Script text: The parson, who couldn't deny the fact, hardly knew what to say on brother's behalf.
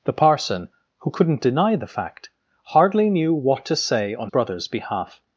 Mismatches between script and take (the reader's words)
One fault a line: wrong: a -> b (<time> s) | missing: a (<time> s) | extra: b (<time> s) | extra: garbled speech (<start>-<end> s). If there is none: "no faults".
no faults